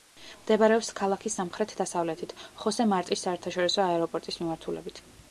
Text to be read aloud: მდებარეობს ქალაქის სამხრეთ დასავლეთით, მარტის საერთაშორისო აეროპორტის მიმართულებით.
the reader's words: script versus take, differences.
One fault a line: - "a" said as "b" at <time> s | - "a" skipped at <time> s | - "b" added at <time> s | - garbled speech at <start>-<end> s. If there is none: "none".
- "ხოსე" added at 2.6 s